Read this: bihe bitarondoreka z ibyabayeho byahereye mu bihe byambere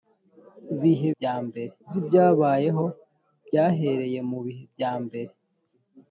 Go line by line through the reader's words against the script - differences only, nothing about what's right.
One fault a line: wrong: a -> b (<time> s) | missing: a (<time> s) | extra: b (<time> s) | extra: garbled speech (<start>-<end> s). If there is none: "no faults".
wrong: bitarondoreka -> byambere (1.1 s)